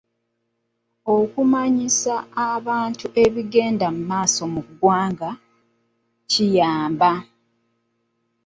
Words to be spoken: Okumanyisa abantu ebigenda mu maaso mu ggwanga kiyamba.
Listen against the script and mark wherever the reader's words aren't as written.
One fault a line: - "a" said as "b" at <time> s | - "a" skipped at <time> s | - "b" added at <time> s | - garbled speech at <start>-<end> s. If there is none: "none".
none